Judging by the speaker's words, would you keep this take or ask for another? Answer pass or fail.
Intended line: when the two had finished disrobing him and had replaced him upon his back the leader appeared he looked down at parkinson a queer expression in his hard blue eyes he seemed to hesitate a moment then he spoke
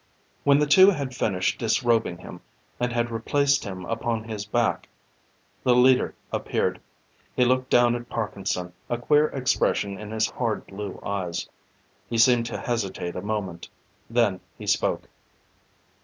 pass